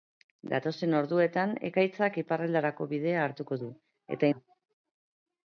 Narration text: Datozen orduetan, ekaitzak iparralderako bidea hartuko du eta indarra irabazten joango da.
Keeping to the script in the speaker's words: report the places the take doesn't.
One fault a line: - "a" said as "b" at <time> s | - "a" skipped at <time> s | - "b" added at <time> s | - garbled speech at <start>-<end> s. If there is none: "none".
- "indarra irabazten joango" skipped at 4.3 s